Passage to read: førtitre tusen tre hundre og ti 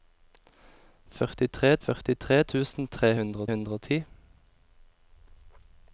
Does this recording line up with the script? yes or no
no